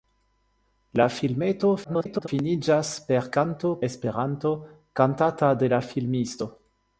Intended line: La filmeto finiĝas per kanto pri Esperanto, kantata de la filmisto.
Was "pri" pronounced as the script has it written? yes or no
no